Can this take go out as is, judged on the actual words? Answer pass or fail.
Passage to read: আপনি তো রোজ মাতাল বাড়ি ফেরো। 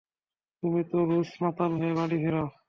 fail